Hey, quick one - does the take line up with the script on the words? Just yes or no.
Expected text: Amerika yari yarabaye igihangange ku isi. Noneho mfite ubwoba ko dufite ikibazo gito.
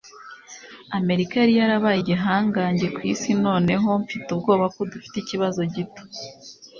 yes